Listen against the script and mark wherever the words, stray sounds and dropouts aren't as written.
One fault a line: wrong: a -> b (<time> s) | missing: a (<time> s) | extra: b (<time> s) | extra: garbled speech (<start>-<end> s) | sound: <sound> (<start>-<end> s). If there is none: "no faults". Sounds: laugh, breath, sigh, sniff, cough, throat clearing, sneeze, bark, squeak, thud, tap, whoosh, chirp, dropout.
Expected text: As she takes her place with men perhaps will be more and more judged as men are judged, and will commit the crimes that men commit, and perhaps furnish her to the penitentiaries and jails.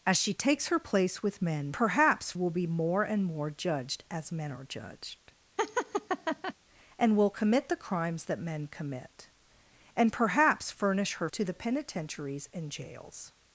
sound: laugh (5.6-6.5 s)